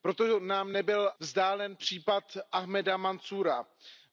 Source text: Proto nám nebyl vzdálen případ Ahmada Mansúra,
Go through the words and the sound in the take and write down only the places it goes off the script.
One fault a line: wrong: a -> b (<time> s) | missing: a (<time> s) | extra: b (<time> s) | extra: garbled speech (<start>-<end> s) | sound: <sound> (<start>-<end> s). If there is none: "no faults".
no faults